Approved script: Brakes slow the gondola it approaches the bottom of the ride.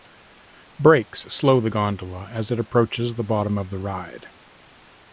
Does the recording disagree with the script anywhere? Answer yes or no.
yes